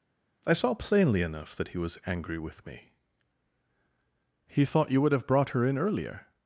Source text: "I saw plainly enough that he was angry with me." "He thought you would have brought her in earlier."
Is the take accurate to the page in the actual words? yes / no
yes